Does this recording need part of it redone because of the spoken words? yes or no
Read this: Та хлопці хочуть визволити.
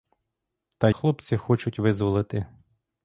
no